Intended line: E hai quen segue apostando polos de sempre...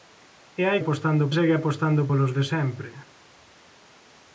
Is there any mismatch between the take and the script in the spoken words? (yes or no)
yes